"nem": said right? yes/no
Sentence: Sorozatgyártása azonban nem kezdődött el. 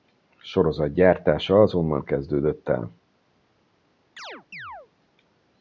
no